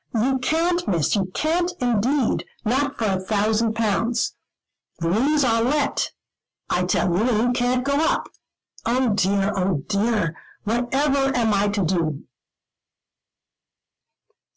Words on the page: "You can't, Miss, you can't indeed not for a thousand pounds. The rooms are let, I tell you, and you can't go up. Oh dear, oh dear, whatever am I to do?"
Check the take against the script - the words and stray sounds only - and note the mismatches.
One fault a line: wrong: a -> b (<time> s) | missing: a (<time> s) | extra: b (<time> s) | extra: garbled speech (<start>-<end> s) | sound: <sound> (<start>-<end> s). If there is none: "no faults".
no faults